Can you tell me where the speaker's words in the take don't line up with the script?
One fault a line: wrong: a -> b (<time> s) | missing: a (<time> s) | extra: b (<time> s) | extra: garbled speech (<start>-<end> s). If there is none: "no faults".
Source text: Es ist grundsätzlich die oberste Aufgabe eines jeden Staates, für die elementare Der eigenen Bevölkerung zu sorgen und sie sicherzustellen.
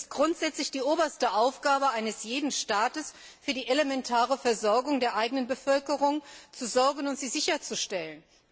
extra: Versorgung (4.3 s)